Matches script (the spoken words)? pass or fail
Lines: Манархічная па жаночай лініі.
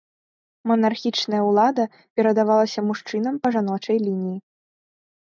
fail